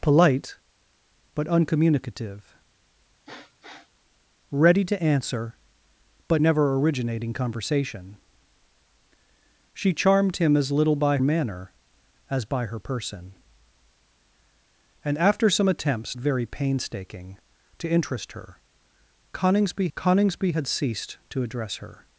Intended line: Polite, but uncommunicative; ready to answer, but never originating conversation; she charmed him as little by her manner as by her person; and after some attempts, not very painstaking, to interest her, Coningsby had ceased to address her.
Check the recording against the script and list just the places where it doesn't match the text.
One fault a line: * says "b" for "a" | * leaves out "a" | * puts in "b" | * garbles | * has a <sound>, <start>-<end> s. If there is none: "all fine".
* has a sniff, 3.2-3.9 s
* leaves out "her"
* leaves out "not"
* puts in "Coningsby"